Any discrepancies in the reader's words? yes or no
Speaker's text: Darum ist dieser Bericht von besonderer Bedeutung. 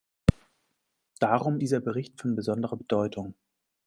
yes